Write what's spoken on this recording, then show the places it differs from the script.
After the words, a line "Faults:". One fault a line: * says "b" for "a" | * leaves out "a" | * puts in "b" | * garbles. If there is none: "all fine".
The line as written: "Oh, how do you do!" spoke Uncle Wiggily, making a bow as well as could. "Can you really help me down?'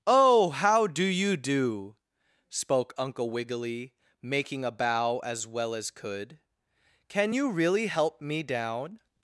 "Oh, how do you do!" spoke Uncle Wiggily, making a bow as well as could. "Can you really help me down?'
Faults:
all fine